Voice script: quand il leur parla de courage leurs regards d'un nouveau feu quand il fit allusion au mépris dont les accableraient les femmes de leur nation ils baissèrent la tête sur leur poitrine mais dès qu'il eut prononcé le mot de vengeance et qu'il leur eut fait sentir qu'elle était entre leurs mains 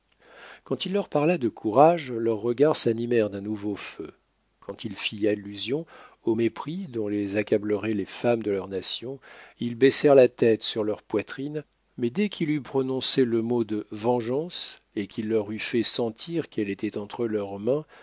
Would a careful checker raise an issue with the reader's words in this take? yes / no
yes